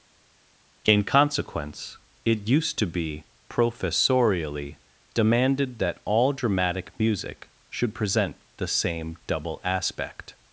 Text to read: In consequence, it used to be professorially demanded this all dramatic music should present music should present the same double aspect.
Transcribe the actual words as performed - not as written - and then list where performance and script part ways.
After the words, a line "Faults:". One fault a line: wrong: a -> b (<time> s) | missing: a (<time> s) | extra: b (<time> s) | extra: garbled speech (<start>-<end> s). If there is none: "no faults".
In consequence, it used to be professorially demanded that all dramatic music should present the same double aspect.
Faults:
wrong: this -> that (5.8 s)
missing: music should present (8.4 s)